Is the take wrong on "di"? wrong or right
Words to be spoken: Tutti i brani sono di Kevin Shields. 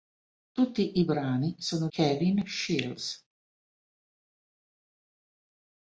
wrong